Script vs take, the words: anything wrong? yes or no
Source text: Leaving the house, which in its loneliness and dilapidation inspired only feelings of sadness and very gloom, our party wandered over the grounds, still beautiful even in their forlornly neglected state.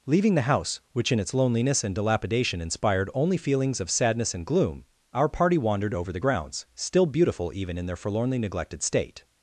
yes